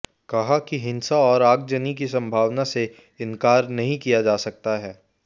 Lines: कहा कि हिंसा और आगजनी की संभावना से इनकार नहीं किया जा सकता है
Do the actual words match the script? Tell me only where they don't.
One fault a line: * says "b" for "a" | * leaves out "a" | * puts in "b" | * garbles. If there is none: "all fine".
all fine